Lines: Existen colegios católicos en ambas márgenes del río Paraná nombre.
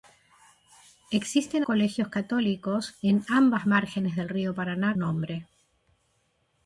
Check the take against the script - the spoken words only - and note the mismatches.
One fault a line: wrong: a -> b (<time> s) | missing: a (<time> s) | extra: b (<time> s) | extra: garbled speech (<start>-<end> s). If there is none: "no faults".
no faults